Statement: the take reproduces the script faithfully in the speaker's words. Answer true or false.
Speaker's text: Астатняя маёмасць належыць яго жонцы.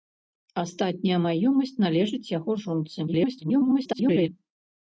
false